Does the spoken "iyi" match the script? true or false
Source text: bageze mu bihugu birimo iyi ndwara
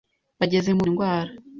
false